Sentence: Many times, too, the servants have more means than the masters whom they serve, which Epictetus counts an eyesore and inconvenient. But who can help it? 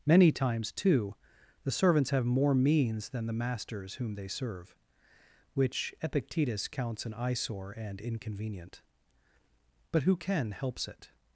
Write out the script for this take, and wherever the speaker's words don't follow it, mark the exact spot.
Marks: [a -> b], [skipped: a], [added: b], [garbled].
Many times, too, the servants have more means than the masters whom they serve, which Epictetus counts an eyesore and inconvenient. But who can [help -> helps] it?